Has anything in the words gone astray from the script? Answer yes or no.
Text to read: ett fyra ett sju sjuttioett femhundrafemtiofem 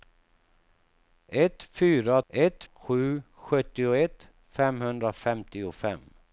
no